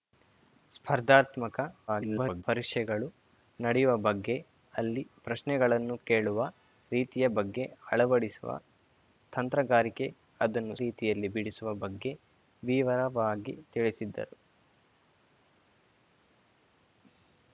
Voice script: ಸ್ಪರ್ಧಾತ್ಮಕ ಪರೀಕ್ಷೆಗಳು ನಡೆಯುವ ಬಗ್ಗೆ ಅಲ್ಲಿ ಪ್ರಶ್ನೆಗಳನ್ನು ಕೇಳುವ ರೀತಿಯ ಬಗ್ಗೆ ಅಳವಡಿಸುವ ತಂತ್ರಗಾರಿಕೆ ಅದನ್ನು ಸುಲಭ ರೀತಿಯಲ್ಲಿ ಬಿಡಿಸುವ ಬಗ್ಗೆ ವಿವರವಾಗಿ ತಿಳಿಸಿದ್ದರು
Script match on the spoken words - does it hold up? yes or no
no